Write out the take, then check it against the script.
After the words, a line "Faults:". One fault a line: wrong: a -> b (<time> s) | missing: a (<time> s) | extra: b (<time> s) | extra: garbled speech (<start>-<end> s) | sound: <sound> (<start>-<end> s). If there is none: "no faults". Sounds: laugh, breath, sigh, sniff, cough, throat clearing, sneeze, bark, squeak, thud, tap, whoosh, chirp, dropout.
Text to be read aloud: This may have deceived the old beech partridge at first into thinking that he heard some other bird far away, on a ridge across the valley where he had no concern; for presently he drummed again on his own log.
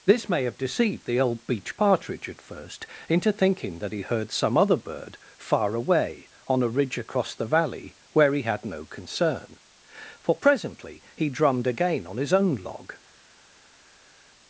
This may have deceived the old beech partridge at first into thinking that he heard some other bird far away, on a ridge across the valley where he had no concern; for presently he drummed again on his own log.
Faults:
no faults